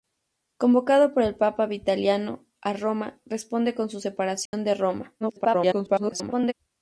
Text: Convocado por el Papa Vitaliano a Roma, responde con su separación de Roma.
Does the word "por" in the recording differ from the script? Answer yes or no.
no